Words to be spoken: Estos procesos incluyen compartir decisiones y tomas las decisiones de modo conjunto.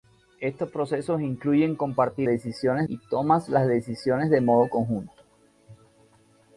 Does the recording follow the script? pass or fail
pass